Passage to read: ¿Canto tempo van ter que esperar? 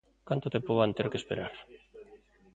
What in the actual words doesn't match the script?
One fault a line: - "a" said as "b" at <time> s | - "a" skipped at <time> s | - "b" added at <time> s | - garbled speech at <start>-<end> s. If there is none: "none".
none